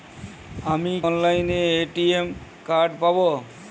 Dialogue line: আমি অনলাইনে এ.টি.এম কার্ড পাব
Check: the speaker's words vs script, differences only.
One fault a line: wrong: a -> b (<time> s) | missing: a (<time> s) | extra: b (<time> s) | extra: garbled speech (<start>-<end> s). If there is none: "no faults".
no faults